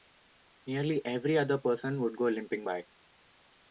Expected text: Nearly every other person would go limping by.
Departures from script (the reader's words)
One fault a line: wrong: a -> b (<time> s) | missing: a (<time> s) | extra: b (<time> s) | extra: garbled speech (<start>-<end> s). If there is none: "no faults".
no faults